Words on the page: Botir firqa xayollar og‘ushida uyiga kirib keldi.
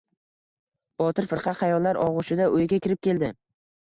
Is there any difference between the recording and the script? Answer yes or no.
no